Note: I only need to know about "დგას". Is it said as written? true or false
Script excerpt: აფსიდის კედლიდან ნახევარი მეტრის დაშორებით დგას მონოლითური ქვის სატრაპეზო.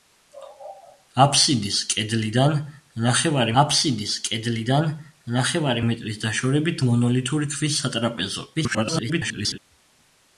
false